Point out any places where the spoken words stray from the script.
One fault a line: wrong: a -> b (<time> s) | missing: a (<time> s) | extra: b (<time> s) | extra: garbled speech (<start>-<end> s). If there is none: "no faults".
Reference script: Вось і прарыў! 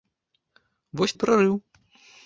no faults